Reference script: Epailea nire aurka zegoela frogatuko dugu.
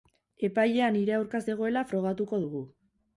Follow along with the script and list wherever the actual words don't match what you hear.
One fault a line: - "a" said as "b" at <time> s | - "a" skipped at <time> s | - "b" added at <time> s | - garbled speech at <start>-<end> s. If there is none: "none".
none